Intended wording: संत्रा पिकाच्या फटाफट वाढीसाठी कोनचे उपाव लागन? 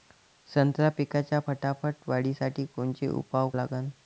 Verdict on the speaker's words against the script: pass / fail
pass